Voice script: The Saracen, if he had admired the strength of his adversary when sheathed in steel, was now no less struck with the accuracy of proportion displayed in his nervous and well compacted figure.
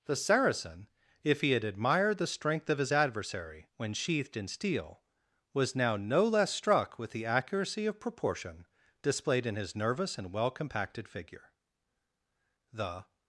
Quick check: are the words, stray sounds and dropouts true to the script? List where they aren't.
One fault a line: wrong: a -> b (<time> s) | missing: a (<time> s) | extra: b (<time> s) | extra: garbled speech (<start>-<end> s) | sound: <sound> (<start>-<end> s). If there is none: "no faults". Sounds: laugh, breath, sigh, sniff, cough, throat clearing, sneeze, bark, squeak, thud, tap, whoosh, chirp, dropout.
extra: The (12.7 s)